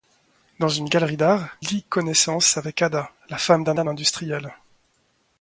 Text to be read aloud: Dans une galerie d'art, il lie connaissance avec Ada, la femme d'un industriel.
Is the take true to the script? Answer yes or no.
no